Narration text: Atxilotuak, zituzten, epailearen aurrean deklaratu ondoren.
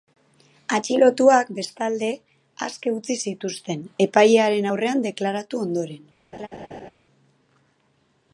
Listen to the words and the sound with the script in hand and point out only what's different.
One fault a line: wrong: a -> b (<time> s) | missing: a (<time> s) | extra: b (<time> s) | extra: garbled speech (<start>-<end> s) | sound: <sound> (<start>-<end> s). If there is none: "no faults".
extra: bestalde aske utzi (1.6 s)
sound: laugh (6.3-6.9 s)